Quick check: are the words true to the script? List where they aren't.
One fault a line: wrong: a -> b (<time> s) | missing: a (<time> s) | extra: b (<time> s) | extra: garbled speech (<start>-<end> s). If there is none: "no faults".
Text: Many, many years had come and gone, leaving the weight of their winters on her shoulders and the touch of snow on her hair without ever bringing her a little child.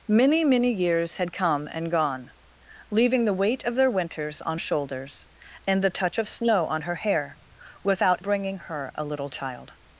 missing: her (4.6 s)
missing: ever (8.2 s)